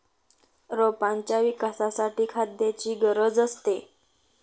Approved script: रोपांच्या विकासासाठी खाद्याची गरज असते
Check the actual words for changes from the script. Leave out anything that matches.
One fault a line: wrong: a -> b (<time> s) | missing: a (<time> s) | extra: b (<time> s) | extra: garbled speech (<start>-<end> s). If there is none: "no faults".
no faults